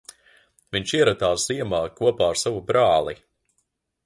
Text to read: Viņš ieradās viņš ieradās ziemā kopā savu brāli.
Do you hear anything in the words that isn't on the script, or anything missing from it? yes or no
yes